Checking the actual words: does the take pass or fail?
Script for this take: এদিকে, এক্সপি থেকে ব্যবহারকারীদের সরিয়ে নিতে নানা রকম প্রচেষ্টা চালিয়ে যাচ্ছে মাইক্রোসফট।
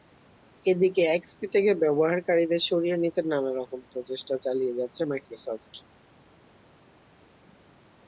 pass